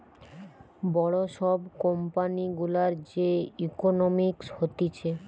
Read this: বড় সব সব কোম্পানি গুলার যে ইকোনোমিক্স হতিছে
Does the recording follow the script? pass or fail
fail